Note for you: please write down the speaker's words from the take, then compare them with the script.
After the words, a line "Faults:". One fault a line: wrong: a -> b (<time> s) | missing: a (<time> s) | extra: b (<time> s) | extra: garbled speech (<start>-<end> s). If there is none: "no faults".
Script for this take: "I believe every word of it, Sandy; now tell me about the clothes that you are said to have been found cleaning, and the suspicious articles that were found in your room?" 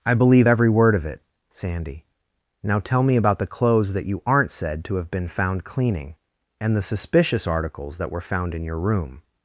"I believe every word of it, Sandy; now tell me about the clothes that you aren't said to have been found cleaning, and the suspicious articles that were found in your room?"
Faults:
wrong: are -> aren't (4.3 s)